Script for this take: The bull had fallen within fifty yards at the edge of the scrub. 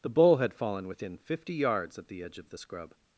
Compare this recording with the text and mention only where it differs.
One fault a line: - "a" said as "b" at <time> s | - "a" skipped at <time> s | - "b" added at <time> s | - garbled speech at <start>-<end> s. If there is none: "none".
none